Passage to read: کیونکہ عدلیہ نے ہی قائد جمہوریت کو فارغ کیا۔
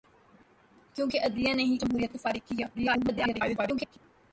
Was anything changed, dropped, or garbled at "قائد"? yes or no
yes